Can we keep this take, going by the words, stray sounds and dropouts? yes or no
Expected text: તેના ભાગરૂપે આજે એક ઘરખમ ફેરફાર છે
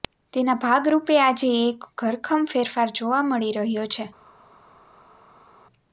no